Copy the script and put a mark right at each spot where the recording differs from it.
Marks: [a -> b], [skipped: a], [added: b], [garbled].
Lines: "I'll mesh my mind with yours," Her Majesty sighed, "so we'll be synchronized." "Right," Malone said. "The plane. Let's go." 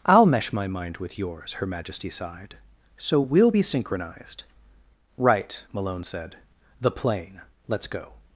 "I'll mesh my mind with yours," Her Majesty sighed, "so we'll be synchronized." "Right," Malone said. "The plane. Let's go."